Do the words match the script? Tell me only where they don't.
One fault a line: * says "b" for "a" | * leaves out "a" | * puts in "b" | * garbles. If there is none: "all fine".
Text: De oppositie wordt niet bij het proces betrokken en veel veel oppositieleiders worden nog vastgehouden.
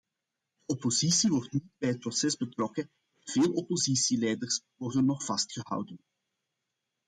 * leaves out "veel"